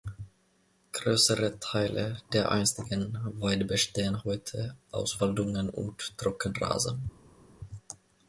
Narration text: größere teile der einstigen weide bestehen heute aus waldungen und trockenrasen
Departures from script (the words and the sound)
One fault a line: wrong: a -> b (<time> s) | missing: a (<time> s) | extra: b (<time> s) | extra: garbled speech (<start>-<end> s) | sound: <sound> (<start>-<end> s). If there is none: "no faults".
no faults